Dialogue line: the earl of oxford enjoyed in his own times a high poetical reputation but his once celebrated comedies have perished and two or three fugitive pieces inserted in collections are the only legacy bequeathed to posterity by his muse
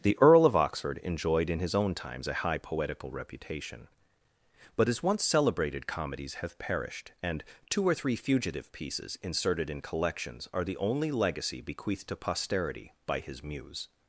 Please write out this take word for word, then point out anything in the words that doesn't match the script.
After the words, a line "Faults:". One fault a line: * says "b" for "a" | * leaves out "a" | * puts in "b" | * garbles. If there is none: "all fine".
the earl of oxford enjoyed in his own times a high poetical reputation but his once celebrated comedies have perished and two or three fugitive pieces inserted in collections are the only legacy bequeathed to posterity by his muse
Faults:
all fine